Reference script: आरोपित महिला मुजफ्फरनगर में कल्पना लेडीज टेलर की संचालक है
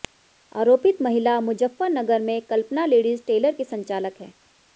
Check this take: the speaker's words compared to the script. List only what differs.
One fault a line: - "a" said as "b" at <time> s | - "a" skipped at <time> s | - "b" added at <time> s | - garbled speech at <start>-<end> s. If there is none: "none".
none